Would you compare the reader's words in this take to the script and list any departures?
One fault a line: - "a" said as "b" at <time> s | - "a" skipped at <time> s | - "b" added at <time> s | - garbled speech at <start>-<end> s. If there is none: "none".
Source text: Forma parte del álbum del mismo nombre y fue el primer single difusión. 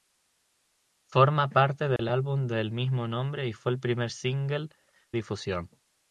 none